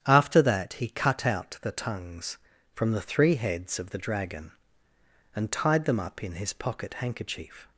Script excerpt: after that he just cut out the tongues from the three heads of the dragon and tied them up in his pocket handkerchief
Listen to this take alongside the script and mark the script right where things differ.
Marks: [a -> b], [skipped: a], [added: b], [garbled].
after that he [skipped: just] cut out the tongues from the three heads of the dragon and tied them up in his pocket handkerchief